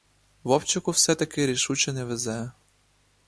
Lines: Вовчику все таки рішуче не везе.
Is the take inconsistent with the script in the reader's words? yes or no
no